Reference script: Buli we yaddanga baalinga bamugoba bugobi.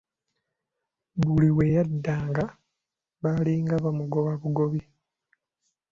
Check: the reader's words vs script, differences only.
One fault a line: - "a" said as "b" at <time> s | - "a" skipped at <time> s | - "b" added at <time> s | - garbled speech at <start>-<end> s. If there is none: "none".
none